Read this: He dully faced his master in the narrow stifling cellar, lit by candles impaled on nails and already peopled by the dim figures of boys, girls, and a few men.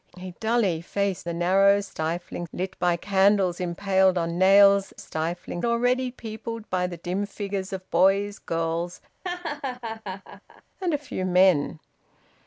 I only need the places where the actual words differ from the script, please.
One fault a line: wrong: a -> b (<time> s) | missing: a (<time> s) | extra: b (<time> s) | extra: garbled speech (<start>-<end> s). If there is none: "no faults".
missing: his master in (1.3 s)
missing: cellar (2.5 s)
wrong: and -> stifling (5.0 s)